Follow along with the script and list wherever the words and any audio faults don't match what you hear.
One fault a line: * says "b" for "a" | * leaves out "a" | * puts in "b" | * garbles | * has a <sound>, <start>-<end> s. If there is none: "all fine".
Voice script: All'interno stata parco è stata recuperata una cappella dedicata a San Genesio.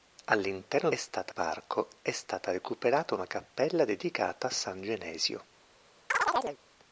* has a chirp, 6.1-6.6 s